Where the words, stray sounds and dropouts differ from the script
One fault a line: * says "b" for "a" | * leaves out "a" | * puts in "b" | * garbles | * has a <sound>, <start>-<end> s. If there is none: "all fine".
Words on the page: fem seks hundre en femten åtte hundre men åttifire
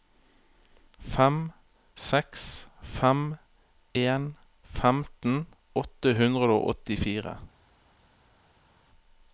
* says "fem" for "hundre"
* says "og" for "men"